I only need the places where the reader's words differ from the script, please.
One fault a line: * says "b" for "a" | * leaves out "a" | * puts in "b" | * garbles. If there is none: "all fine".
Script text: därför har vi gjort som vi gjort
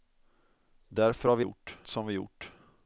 all fine